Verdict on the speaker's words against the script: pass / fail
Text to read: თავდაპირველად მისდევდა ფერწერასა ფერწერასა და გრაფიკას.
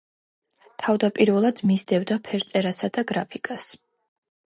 fail